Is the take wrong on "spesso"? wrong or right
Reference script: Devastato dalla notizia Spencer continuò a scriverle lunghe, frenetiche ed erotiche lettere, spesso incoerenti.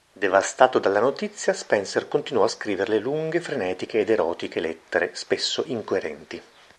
right